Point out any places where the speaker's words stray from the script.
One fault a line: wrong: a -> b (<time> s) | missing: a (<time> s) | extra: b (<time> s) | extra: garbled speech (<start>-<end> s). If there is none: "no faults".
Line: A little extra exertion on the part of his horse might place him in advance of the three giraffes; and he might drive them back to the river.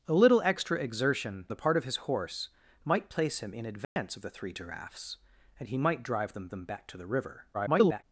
missing: on (1.5 s)
extra: them (6.5 s)
extra: garbled speech (7.5-8.0 s)